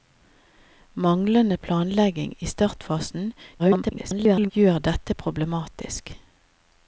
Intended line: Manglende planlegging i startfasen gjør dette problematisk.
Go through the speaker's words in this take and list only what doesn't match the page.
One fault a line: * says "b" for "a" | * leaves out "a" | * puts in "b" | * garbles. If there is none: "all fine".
* garbles